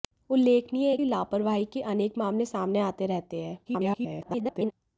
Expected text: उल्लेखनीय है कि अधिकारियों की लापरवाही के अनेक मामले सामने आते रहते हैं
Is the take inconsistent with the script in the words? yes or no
yes